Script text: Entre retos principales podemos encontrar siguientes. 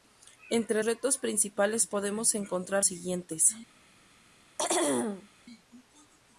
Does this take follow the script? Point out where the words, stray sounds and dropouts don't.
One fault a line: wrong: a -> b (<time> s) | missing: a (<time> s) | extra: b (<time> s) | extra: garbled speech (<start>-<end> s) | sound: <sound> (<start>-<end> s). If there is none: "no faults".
sound: throat clearing (4.6-5.3 s)